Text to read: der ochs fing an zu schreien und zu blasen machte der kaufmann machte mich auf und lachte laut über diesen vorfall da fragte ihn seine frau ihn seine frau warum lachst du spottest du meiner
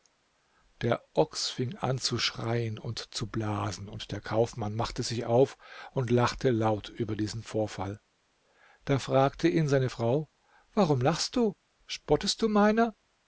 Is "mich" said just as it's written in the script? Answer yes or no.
no